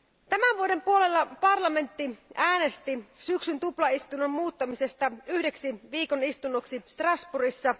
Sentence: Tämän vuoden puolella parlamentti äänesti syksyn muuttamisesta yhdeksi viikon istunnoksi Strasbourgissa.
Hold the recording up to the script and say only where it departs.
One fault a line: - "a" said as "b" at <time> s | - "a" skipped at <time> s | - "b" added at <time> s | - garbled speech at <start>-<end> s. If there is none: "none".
- "tuplaistunnon" added at 3.6 s